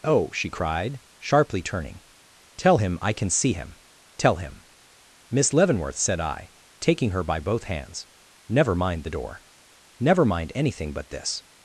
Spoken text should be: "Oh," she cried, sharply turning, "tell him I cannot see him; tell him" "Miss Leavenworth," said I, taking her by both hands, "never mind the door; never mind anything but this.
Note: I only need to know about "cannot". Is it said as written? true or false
false